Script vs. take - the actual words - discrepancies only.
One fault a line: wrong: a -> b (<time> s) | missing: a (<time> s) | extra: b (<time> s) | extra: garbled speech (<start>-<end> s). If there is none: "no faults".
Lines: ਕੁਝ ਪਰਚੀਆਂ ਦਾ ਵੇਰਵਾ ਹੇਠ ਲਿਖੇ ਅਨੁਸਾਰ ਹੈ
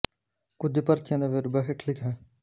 missing: ਅਨੁਸਾਰ (2.0 s)